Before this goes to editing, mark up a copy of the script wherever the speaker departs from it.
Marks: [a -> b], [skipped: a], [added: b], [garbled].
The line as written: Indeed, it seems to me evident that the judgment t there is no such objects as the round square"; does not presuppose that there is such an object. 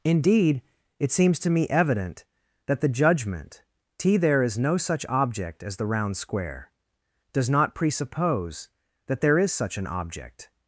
Indeed, it seems to me evident that the judgment t there is no such [objects -> object] as the round square"; does not presuppose that there is such an object.